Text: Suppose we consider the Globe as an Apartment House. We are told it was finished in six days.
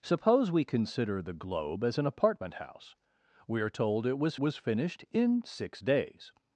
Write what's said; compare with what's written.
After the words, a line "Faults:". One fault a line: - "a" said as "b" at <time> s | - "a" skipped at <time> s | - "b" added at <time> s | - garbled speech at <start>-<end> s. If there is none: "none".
Suppose we consider the Globe as an Apartment House. We are told it was was finished in six days.
Faults:
- "was" added at 4.4 s